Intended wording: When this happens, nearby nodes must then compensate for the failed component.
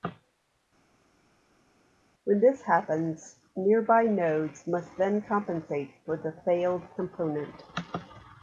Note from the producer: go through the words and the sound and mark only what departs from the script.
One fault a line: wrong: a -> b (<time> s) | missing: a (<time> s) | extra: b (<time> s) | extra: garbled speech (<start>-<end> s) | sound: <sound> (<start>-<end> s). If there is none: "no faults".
no faults